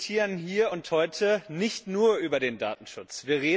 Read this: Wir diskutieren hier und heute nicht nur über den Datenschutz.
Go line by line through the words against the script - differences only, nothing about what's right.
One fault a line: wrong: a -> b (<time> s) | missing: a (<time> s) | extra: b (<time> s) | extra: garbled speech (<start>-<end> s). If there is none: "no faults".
no faults